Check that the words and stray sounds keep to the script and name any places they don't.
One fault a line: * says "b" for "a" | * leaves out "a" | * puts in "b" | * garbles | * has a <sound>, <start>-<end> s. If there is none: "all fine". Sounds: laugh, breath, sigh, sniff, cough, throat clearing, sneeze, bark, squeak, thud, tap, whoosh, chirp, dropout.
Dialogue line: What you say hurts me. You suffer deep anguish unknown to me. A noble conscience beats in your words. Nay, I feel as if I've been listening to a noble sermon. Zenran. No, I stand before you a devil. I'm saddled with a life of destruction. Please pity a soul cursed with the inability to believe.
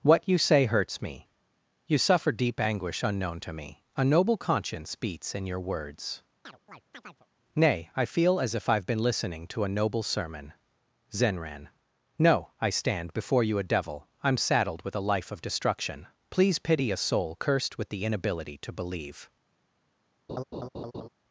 * has a chirp, 6.4-7.3 s
* has a laugh, 20.3-21.1 s